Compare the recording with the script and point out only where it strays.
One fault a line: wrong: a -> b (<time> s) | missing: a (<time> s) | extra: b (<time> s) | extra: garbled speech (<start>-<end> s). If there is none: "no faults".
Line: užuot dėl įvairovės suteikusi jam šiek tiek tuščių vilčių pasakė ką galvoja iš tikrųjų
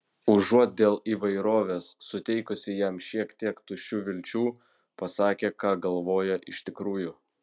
no faults